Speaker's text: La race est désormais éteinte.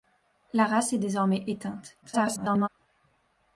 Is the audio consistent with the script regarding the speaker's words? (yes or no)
no